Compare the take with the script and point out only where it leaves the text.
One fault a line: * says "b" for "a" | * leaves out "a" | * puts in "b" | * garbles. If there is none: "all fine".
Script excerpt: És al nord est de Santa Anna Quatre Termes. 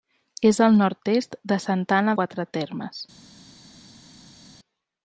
all fine